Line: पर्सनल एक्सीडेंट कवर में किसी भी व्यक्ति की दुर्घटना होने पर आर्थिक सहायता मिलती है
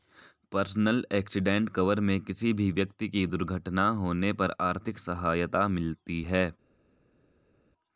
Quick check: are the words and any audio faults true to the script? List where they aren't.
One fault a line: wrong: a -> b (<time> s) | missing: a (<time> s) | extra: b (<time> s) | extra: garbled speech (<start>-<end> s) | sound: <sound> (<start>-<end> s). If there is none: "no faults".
no faults